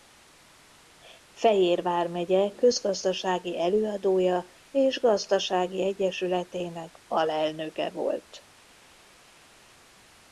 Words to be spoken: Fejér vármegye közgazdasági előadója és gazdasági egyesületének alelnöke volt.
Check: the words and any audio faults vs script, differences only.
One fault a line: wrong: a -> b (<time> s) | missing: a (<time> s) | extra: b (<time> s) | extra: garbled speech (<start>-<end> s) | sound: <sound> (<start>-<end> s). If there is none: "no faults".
no faults